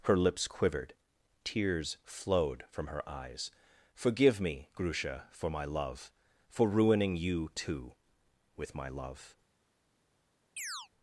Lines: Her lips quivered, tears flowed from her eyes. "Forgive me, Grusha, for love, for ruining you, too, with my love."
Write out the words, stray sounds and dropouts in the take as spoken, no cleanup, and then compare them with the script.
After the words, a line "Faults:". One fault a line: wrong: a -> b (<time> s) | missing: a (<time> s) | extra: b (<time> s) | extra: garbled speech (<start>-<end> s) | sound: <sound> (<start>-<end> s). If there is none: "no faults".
Her lips quivered, tears flowed from her eyes. "Forgive me, Grusha, for my love, for ruining you, too, with my love."
Faults:
extra: my (5.5 s)
sound: chirp (10.6-10.9 s)